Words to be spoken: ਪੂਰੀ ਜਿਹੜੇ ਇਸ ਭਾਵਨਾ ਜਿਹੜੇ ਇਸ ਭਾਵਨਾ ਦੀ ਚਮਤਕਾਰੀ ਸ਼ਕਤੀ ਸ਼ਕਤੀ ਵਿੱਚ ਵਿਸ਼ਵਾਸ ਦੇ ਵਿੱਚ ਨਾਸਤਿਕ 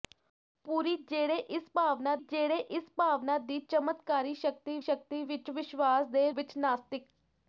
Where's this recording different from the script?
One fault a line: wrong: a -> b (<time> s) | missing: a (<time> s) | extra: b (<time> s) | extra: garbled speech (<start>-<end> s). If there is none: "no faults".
no faults